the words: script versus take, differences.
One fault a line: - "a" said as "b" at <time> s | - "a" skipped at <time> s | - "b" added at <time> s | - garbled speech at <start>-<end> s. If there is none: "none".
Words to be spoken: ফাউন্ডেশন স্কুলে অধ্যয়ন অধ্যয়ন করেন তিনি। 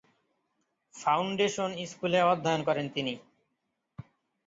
- "অধ্যয়ন" skipped at 2.6 s